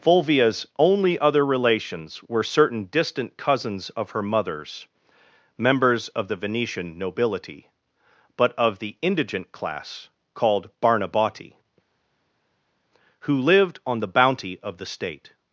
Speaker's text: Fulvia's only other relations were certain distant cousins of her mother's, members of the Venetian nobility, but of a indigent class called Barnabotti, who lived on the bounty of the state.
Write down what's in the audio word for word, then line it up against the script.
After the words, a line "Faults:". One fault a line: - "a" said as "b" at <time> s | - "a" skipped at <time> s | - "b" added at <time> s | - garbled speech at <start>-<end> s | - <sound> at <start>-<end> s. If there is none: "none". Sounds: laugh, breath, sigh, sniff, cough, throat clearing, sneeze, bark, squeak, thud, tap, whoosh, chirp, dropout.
Fulvia's only other relations were certain distant cousins of her mother's, members of the Venetian nobility, but of the indigent class called Barnabotti, who lived on the bounty of the state.
Faults:
- "a" said as "the" at 8.8 s